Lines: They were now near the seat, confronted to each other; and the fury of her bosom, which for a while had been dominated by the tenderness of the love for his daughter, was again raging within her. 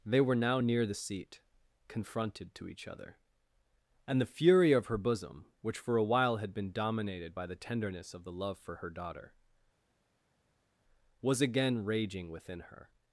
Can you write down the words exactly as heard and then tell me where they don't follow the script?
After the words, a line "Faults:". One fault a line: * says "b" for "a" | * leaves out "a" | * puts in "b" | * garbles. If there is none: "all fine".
They were now near the seat, confronted to each other; and the fury of her bosom, which for a while had been dominated by the tenderness of the love for her daughter, was again raging within her.
Faults:
* says "her" for "his"